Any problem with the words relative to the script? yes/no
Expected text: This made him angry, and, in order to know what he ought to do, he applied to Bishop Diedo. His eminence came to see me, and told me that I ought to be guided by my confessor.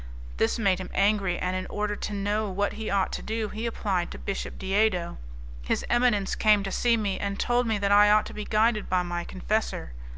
no